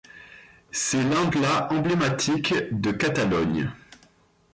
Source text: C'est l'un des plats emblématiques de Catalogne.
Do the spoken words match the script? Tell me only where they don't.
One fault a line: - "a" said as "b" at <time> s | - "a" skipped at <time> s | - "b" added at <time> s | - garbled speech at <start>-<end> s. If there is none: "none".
- "des" skipped at 1.3 s